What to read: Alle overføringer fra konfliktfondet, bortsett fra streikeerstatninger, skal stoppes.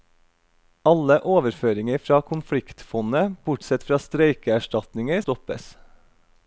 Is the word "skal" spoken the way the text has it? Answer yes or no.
no